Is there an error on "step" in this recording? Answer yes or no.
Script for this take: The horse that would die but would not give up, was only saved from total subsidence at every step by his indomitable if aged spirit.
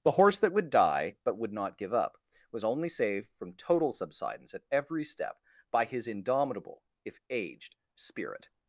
no